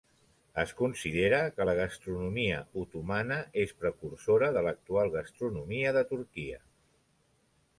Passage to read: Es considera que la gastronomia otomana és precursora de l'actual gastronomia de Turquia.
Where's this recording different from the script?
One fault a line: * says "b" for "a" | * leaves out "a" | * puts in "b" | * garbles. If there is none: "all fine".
all fine